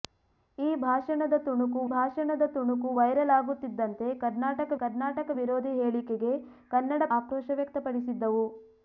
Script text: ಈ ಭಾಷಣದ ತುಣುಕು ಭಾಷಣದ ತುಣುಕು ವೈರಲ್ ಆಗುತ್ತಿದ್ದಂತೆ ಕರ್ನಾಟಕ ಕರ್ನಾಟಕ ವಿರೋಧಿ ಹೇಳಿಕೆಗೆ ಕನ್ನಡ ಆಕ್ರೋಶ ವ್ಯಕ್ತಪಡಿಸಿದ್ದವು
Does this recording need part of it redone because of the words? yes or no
no